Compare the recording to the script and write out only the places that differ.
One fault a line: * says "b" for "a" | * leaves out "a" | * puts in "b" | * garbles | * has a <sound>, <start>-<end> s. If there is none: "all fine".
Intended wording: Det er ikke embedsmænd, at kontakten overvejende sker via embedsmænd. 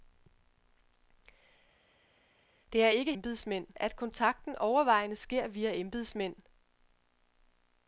all fine